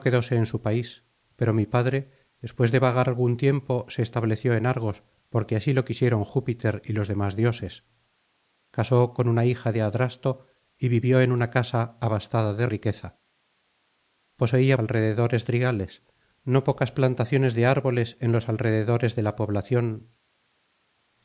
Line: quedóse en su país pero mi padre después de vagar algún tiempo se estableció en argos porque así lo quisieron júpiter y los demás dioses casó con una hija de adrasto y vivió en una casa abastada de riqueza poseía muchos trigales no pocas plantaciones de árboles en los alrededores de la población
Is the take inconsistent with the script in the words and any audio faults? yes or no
yes